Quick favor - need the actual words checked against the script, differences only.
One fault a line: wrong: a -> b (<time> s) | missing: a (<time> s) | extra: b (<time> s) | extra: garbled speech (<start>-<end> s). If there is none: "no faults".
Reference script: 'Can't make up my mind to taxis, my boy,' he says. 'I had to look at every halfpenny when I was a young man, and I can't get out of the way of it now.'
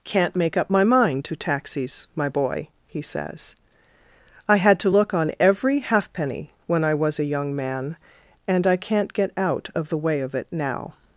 wrong: at -> on (5.1 s)